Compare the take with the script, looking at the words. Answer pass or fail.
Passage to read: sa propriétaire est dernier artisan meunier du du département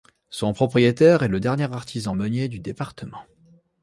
fail